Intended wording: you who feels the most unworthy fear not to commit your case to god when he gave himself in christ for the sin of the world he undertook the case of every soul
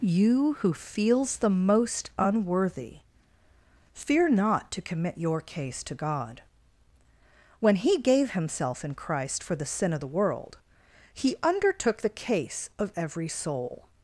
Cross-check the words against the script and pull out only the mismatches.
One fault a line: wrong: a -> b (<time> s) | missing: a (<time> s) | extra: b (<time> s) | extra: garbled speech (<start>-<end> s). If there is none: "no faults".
no faults